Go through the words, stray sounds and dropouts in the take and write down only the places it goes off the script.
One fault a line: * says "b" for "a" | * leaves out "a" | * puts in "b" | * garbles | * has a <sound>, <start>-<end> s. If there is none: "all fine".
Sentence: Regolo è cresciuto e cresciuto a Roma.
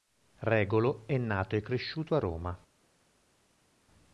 * says "nato" for "cresciuto"